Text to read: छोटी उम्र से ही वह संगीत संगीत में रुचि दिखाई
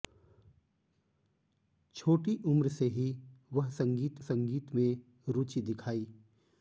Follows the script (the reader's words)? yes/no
yes